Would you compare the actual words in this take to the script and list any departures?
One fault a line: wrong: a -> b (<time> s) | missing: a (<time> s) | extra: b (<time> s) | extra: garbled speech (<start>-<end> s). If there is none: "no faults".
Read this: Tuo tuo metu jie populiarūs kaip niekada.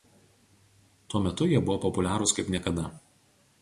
missing: tuo (1.2 s)
extra: buvo (1.7 s)